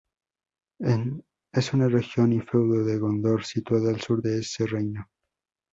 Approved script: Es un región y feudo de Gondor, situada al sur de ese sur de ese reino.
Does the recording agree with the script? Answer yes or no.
no